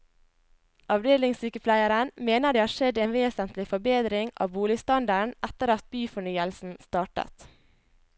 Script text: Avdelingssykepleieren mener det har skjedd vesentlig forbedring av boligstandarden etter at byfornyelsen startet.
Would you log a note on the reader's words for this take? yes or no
yes